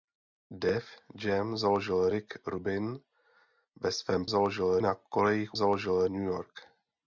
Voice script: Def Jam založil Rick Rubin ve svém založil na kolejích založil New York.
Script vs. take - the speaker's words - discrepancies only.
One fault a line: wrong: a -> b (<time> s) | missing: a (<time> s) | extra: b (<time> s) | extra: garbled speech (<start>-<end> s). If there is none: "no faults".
no faults